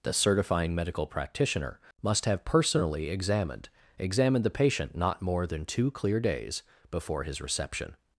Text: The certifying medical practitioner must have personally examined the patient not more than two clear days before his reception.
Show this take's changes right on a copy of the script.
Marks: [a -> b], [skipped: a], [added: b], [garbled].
The certifying medical practitioner must have personally examined [added: examined] the patient not more than two clear days before his reception.